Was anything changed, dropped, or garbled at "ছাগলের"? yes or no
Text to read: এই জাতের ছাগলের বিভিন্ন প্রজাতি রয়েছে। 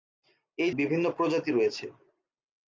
yes